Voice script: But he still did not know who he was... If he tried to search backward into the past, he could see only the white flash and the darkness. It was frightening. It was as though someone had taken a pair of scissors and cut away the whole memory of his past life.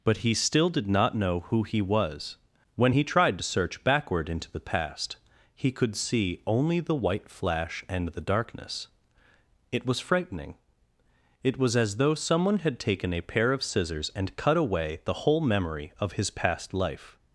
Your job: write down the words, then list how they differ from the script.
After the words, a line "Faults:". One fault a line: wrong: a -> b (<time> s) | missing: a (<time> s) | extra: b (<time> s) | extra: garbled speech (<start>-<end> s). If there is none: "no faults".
But he still did not know who he was... When he tried to search backward into the past, he could see only the white flash and the darkness. It was frightening. It was as though someone had taken a pair of scissors and cut away the whole memory of his past life.
Faults:
wrong: If -> When (2.7 s)